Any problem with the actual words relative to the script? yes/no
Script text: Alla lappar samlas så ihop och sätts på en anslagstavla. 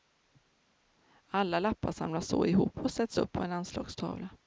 yes